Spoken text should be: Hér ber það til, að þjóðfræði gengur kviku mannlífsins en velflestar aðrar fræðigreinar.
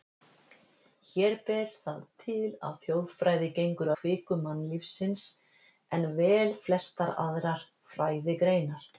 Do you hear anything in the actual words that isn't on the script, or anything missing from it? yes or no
no